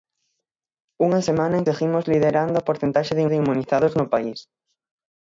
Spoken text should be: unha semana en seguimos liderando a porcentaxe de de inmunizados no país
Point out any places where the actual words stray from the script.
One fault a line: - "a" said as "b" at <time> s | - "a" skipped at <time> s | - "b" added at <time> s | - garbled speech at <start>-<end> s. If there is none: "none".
none